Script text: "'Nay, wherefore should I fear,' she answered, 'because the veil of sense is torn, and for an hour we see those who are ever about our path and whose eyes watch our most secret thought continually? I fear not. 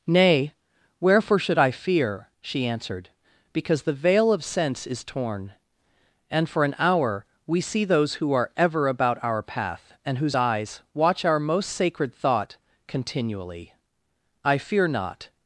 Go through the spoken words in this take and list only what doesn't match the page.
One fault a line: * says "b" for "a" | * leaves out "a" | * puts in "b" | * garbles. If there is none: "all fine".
* says "sacred" for "secret"